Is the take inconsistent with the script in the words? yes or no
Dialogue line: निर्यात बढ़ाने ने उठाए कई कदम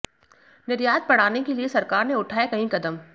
yes